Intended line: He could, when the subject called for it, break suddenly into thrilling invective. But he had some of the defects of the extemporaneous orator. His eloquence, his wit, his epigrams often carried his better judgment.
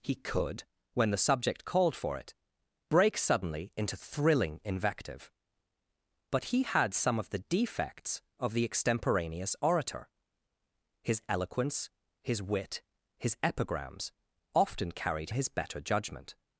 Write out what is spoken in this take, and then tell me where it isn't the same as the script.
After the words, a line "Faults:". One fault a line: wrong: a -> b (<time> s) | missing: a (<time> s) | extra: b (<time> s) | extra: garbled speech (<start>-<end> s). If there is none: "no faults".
He could, when the subject called for it, break suddenly into thrilling invective. But he had some of the defects of the extemporaneous orator. His eloquence, his wit, his epigrams often carried his better judgment.
Faults:
no faults